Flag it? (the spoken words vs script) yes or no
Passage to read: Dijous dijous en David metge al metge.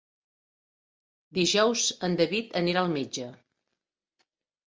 yes